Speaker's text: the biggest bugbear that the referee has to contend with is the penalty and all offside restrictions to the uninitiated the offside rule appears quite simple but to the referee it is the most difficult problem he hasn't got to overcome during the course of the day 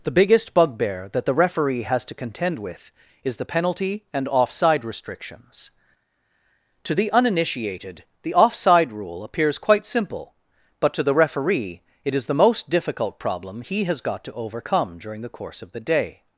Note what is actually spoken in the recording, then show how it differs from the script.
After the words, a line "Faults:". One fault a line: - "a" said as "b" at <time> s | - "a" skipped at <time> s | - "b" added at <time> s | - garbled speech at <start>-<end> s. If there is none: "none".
the biggest bugbear that the referee has to contend with is the penalty and offside restrictions to the uninitiated the offside rule appears quite simple but to the referee it is the most difficult problem he has got to overcome during the course of the day
Faults:
- "all" skipped at 4.3 s
- "hasn't" said as "has" at 13.8 s